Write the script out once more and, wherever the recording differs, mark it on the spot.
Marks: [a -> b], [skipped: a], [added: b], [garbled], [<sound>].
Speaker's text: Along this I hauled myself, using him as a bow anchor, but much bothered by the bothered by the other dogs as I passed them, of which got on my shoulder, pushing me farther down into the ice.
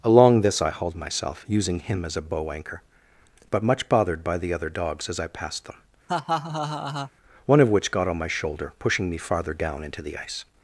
Along this I hauled myself, using him as a bow anchor, but much bothered by the [skipped: bothered by the] other dogs as I passed them, [laugh] [added: one] of which got on my shoulder, pushing me farther down into the ice.